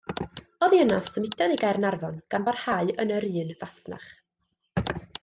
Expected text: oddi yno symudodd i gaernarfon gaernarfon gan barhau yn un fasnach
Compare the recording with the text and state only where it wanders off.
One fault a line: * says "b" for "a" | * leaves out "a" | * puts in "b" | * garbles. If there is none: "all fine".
* leaves out "gaernarfon"
* puts in "yr"